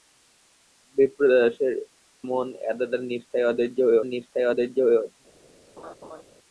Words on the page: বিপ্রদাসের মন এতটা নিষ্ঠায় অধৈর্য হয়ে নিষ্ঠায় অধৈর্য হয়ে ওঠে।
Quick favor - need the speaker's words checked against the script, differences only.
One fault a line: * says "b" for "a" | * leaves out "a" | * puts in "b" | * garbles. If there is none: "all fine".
all fine